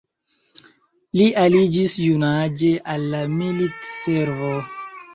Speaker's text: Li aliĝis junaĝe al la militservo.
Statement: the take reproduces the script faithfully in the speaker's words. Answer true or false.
true